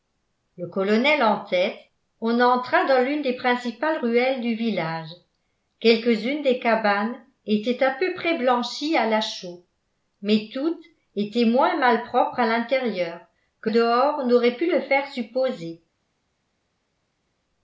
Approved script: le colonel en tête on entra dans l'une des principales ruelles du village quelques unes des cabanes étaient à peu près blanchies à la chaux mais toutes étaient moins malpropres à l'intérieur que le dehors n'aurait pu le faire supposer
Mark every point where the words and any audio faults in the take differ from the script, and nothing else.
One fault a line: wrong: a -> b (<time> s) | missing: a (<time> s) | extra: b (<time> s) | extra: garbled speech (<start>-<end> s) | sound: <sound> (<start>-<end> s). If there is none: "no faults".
missing: le (13.7 s)